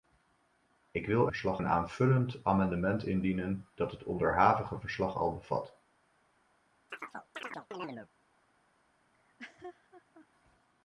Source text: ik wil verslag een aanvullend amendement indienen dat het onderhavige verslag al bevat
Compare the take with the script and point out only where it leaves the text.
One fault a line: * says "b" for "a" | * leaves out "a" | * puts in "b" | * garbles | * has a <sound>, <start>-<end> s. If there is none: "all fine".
* has a chirp, 6.9-8.1 s
* has a laugh, 9.1-10.3 s